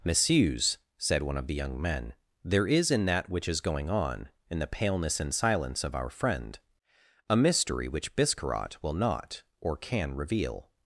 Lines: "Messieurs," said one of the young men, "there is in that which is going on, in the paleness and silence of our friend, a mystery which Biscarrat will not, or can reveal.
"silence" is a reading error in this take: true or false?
false